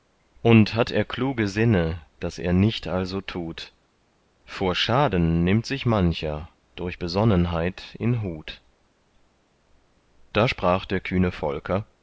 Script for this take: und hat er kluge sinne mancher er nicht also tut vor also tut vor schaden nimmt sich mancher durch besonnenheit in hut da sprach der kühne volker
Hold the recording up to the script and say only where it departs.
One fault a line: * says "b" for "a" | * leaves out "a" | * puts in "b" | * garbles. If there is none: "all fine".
* says "daß" for "mancher"
* leaves out "also tut vor"